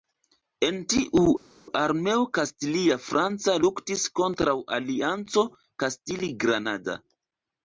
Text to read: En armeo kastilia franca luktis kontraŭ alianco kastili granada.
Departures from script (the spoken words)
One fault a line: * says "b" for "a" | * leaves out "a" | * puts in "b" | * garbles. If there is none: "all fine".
* puts in "tiu"